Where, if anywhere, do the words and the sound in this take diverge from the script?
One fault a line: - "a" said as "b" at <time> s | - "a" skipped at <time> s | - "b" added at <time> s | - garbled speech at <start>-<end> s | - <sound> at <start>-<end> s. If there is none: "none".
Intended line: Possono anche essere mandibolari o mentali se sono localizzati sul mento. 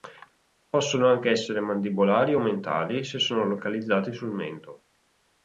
none